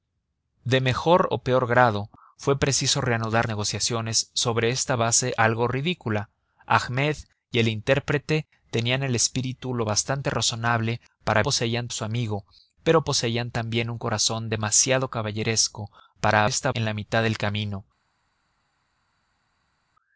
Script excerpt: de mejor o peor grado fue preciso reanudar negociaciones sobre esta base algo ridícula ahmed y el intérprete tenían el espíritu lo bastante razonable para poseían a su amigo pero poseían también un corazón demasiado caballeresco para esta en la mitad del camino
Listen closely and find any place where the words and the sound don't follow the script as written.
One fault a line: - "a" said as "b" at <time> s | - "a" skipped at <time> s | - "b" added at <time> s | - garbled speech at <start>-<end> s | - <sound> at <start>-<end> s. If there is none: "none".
none